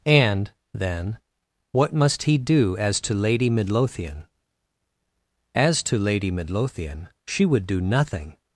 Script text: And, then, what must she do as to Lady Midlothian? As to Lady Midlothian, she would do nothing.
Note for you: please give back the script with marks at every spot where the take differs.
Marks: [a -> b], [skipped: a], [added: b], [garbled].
And, then, what must [she -> he] do as to Lady Midlothian? As to Lady Midlothian, she would do nothing.